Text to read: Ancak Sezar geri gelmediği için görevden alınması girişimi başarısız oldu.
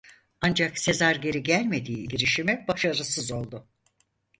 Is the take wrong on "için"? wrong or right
wrong